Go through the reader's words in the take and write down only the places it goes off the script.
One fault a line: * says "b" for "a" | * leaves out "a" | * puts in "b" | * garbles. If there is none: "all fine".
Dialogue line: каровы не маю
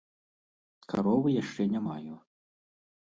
* puts in "яшчэ"